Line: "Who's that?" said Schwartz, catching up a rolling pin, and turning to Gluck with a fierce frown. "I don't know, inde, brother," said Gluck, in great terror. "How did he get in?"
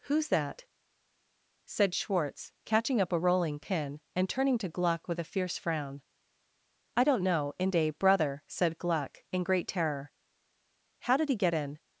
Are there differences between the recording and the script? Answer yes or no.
no